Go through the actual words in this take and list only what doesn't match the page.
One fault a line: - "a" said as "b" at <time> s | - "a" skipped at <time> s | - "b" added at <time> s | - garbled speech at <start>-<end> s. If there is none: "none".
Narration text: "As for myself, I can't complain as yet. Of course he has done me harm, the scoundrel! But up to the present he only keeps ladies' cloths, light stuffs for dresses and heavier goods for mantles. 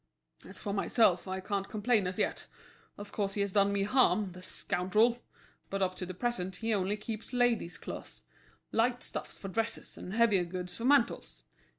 none